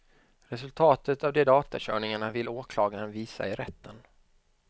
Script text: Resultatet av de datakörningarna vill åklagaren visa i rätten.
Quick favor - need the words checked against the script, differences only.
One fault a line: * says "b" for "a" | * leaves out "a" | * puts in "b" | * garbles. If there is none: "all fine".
all fine